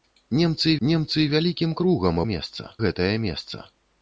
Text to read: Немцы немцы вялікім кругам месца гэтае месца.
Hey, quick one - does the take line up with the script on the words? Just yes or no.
yes